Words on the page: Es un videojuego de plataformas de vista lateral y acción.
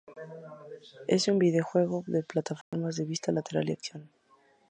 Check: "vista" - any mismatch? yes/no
no